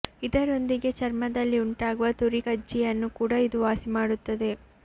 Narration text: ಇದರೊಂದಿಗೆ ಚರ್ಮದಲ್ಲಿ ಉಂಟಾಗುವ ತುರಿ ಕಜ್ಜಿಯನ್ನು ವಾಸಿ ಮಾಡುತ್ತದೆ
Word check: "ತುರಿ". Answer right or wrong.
right